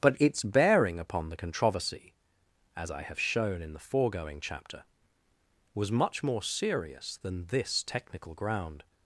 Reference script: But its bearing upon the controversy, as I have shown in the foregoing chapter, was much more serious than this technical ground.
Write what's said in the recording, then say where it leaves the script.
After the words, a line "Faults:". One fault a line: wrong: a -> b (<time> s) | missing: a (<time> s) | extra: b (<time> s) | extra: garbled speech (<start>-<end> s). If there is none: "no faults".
But its bearing upon the controversy, as I have shown in the foregoing chapter, was much more serious than this technical ground.
Faults:
no faults